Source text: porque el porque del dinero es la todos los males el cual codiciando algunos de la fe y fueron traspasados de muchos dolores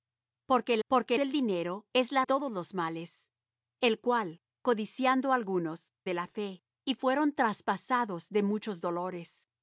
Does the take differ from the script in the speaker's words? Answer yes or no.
no